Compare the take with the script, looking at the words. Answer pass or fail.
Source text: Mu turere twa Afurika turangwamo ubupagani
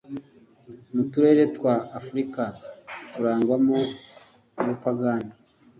pass